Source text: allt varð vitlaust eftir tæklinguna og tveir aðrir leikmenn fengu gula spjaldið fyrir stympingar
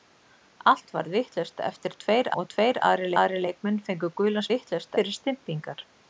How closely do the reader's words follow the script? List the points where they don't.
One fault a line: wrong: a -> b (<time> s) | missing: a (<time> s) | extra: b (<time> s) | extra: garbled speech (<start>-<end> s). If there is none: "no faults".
wrong: tæklinguna -> tveir (2.0 s)
extra: aðrir (3.2 s)
wrong: spjaldið -> vitlaust (4.5 s)